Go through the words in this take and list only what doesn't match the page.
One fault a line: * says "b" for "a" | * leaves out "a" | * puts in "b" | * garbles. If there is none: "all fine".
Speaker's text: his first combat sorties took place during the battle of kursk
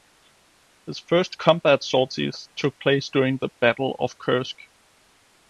all fine